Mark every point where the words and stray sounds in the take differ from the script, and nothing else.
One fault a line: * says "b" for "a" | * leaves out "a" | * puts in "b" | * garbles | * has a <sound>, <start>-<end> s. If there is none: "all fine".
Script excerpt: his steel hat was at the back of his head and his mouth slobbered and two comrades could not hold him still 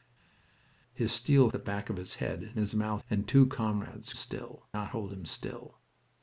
* leaves out "hat was at"
* leaves out "slobbered"
* says "still" for "could"